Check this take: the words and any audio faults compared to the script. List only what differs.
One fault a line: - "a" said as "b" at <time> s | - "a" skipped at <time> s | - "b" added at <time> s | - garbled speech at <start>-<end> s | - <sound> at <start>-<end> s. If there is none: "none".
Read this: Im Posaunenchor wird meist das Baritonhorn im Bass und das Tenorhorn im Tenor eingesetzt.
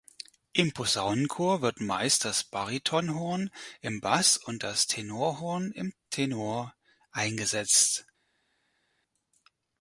none